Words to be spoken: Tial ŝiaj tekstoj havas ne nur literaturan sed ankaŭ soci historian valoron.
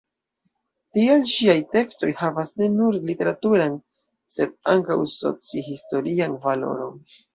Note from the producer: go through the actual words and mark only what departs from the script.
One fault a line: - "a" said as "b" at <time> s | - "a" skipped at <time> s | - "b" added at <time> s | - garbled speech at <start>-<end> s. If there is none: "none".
none